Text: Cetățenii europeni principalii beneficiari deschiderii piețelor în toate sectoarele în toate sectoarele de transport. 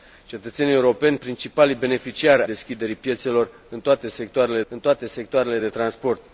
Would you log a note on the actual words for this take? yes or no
no